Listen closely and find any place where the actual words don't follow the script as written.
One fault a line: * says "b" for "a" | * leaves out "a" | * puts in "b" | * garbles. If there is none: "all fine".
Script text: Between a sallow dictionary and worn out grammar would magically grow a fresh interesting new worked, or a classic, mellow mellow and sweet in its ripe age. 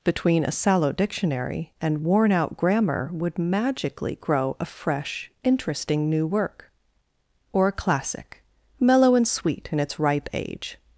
* says "work" for "worked"
* leaves out "mellow"